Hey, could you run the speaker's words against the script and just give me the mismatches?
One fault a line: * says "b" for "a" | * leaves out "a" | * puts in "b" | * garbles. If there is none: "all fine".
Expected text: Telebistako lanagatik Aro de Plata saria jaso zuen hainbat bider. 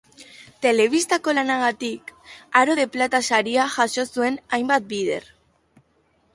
all fine